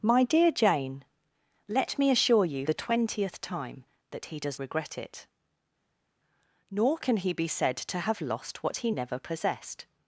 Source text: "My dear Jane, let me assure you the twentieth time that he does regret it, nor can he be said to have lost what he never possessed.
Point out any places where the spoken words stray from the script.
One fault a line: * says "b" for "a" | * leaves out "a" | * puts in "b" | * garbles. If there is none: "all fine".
all fine